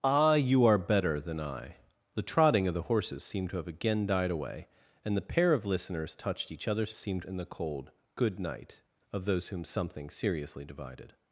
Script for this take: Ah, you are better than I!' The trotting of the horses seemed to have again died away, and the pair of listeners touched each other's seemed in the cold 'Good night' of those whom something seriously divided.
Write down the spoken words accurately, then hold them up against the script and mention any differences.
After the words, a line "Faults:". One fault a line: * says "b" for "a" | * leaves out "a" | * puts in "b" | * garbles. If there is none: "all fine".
Ah, you are better than I!' The trotting of the horses seemed to have again died away, and the pair of listeners touched each other's seemed in the cold 'Good night' of those whom something seriously divided.
Faults:
all fine